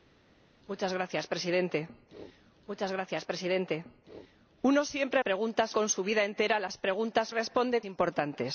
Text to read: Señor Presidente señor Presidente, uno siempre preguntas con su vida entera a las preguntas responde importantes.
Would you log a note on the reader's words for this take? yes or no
no